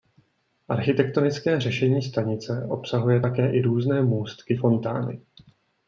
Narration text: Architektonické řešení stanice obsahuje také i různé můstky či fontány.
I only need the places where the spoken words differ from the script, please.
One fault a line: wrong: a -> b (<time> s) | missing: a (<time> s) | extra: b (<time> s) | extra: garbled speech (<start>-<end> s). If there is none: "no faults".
missing: či (4.6 s)